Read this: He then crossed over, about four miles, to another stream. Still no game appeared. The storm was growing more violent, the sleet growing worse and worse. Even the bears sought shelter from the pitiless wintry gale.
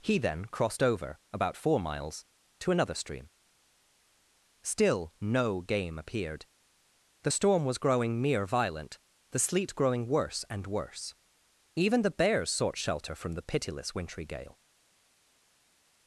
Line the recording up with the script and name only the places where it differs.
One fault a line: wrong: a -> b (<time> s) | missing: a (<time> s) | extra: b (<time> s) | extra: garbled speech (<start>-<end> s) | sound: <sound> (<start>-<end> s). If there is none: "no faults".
wrong: more -> mere (8.2 s)